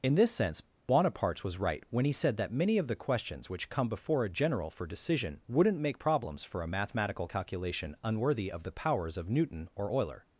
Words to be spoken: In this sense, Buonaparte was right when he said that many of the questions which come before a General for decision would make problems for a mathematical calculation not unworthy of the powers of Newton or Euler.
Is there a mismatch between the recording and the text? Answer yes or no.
yes